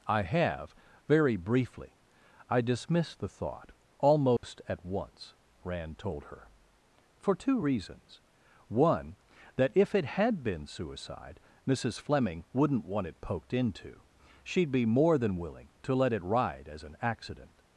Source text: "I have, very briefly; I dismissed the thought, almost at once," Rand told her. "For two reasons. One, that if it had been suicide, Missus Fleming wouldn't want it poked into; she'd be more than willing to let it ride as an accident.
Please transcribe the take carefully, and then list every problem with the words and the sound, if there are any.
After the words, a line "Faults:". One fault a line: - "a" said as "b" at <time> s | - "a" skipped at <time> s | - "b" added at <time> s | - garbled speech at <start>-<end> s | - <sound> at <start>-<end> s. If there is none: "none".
"I have, very briefly; I dismissed the thought, almost at once," Rand told her. "For two reasons. One, that if it had been suicide, Missus Fleming wouldn't want it poked into; she'd be more than willing to let it ride as an accident.
Faults:
- dropout at 4.4-4.4 s